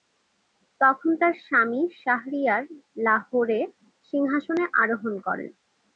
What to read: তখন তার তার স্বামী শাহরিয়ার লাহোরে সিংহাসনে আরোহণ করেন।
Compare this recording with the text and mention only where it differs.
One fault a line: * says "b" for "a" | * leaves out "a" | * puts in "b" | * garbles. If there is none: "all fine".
* leaves out "তার"